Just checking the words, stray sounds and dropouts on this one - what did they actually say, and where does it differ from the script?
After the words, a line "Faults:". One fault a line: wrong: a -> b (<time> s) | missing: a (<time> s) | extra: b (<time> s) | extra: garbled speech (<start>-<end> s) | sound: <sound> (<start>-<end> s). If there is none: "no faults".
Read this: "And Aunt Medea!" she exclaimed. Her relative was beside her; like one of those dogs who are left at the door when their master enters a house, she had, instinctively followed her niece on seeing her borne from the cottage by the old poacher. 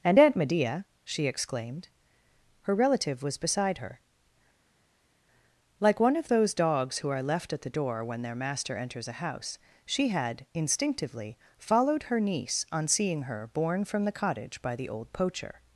"And Aunt Medea!" she exclaimed. Her relative was beside her; like one of those dogs who are left at the door when their master enters a house, she had, instinctively followed her niece on seeing her borne from the cottage by the old poacher.
Faults:
no faults